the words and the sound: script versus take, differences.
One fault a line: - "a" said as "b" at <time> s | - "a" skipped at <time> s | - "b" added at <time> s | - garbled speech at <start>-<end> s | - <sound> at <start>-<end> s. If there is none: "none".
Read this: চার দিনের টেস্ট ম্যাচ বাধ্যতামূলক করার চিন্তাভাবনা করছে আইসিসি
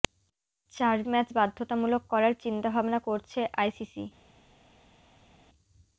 - "দিনের টেস্ট" skipped at 1.0 s